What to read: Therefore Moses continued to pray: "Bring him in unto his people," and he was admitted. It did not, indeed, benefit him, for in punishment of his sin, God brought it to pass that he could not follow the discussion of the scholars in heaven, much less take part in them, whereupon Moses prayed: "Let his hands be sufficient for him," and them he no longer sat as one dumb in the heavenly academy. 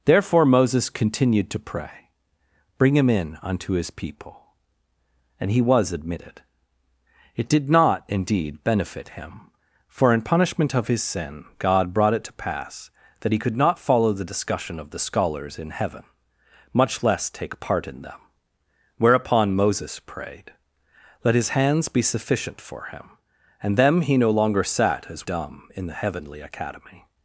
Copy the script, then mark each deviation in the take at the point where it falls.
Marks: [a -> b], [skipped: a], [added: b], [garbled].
Therefore Moses continued to pray: "Bring him in unto his people," and he was admitted. It did not, indeed, benefit him, for in punishment of his sin, God brought it to pass that he could not follow the discussion of the scholars in heaven, much less take part in them, whereupon Moses prayed: "Let his hands be sufficient for him," and them he no longer sat as [skipped: one] dumb in the heavenly academy.